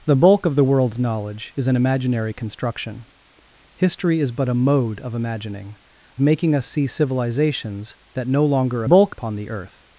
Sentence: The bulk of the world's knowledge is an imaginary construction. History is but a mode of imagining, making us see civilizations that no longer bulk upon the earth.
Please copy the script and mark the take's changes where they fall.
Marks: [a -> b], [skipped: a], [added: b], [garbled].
The bulk of the world's knowledge is an imaginary construction. History is but a mode of imagining, making us see civilizations that no longer bulk upon the earth.